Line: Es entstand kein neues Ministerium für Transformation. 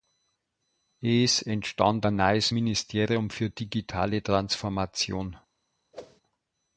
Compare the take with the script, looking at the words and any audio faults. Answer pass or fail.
fail